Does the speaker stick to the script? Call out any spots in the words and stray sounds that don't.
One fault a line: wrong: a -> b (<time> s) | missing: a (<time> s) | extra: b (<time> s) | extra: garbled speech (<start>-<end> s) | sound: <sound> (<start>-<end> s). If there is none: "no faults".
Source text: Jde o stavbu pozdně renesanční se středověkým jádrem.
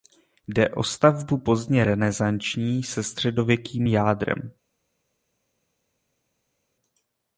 no faults